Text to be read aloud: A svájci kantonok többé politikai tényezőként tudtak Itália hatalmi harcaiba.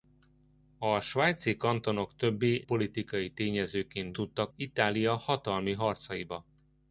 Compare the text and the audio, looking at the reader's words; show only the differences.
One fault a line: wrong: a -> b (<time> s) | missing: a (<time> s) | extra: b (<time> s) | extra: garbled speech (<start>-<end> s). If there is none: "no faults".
no faults